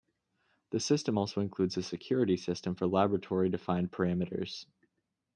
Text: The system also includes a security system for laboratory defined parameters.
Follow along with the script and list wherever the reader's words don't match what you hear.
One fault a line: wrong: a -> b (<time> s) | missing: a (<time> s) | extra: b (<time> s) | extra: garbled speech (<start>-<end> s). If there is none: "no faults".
no faults